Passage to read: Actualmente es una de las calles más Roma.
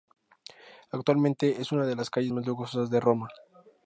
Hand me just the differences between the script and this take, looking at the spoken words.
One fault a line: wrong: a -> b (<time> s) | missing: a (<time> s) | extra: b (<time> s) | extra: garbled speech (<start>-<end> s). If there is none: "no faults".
extra: lujosas de (2.5 s)